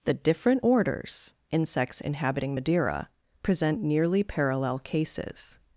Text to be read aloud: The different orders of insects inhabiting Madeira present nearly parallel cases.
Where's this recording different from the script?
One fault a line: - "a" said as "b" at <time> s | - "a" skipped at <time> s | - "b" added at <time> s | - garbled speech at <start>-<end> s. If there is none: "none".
- "of" skipped at 1.3 s